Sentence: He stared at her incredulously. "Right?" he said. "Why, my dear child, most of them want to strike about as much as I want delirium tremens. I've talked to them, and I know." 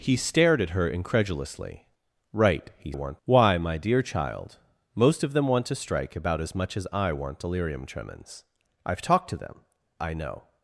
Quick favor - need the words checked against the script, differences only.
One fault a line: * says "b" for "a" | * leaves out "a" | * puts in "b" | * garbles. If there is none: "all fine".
* says "want" for "said"
* leaves out "and"